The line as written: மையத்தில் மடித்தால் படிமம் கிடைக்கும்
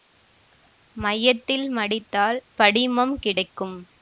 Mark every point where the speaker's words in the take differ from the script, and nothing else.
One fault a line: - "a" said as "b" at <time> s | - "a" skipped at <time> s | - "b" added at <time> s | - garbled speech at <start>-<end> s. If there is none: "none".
none